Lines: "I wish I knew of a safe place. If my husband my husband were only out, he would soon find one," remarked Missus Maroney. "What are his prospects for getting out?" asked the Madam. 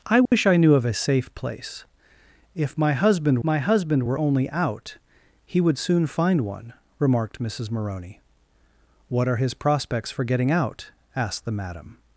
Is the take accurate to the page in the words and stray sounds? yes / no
no